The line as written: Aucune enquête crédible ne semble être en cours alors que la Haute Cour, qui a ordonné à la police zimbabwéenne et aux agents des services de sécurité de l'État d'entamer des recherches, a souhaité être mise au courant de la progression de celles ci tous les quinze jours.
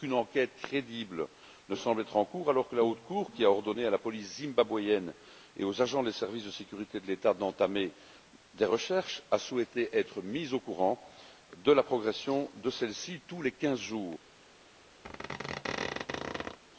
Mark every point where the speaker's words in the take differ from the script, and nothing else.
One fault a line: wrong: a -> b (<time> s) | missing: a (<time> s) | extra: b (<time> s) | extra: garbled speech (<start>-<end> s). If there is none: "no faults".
no faults